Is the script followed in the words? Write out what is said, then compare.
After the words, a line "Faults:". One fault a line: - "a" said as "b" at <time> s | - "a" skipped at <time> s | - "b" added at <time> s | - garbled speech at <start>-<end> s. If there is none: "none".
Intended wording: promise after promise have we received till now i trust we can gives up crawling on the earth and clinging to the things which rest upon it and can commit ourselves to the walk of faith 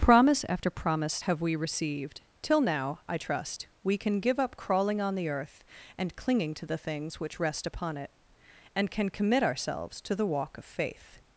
promise after promise have we received till now i trust we can give up crawling on the earth and clinging to the things which rest upon it and can commit ourselves to the walk of faith
Faults:
- "gives" said as "give" at 4.2 s